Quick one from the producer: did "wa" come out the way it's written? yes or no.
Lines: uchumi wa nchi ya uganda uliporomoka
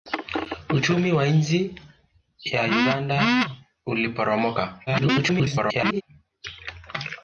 yes